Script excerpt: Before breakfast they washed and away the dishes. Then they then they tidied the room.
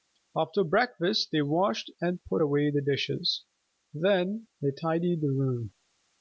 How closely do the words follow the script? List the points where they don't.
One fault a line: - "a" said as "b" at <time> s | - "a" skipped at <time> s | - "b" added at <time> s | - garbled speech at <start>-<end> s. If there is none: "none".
- "Before" said as "After" at 0.3 s
- "put" added at 2.2 s
- "then they" skipped at 4.7 s